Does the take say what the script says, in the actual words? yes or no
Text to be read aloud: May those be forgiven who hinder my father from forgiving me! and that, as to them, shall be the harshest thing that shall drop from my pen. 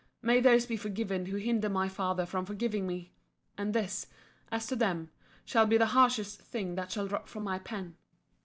no